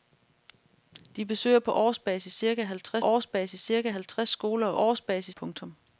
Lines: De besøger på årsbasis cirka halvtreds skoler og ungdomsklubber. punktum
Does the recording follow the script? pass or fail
fail